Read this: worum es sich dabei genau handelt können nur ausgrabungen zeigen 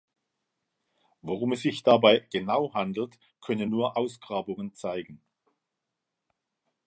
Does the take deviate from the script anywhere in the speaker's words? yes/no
no